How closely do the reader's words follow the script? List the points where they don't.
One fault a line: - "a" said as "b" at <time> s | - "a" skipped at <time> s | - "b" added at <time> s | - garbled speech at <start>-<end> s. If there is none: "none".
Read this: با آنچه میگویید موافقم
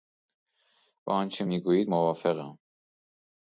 none